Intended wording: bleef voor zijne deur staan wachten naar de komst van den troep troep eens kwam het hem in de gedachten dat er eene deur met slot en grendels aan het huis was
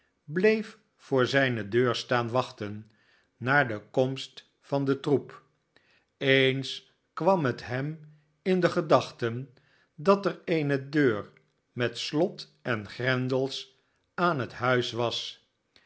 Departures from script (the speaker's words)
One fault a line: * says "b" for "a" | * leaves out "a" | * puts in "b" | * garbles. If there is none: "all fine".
* leaves out "troep"